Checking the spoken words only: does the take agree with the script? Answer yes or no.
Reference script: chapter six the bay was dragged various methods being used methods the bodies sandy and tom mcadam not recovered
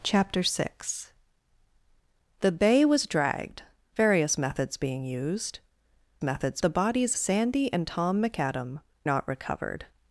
yes